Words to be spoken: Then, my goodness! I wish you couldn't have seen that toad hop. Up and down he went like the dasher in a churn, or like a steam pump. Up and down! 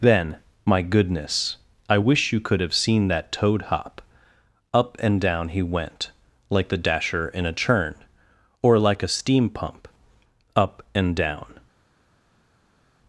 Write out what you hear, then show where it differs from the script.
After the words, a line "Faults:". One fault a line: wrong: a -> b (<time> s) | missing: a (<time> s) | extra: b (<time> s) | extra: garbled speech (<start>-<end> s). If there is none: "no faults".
Then, my goodness! I wish you could have seen that toad hop. Up and down he went like the dasher in a churn, or like a steam pump. Up and down!
Faults:
wrong: couldn't -> could (2.4 s)